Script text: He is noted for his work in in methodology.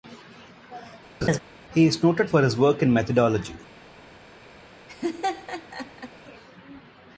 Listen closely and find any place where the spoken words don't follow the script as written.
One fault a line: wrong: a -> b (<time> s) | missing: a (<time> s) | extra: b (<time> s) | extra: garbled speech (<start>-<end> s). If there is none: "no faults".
missing: in (2.9 s)